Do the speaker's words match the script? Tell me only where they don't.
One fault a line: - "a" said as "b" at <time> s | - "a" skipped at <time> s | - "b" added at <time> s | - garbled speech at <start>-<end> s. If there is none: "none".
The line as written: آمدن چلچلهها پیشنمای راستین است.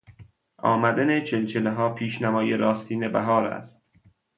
- "بهار" added at 3.1 s